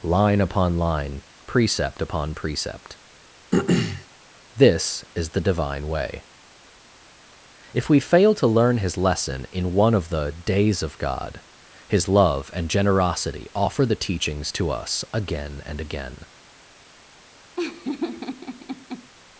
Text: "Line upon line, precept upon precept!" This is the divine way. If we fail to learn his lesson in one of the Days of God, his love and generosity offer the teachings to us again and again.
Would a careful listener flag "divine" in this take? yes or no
no